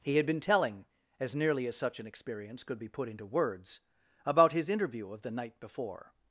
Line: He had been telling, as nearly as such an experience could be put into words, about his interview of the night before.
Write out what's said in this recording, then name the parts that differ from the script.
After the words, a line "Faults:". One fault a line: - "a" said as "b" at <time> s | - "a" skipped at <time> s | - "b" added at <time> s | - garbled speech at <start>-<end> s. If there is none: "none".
He had been telling, as nearly as such an experience could be put into words, about his interview of the night before.
Faults:
none